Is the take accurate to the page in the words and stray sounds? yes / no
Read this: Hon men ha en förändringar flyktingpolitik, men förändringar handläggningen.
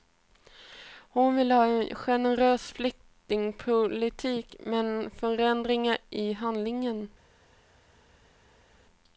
no